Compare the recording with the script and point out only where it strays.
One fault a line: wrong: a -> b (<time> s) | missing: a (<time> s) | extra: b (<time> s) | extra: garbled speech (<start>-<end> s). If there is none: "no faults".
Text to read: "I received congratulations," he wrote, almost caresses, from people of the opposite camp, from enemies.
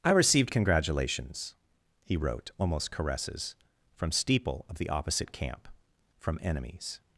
wrong: people -> steeple (4.1 s)